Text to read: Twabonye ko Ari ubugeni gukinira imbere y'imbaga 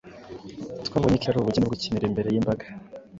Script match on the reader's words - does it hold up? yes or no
yes